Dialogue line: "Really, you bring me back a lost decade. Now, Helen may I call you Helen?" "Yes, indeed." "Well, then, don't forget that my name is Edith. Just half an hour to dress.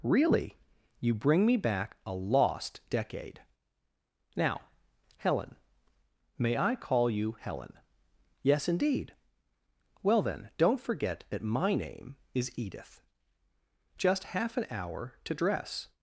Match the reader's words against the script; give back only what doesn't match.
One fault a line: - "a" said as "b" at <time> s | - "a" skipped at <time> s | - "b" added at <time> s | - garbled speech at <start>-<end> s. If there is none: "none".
none